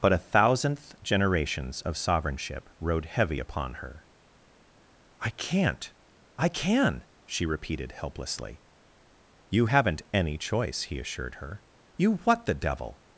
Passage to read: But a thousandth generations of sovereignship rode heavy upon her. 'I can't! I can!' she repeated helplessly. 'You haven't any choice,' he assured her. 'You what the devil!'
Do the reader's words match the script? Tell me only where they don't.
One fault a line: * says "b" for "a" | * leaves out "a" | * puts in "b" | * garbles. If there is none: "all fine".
all fine